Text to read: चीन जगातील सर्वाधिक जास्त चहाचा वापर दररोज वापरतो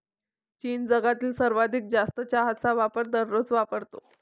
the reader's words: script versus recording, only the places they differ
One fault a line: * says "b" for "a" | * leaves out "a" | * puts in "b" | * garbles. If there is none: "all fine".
all fine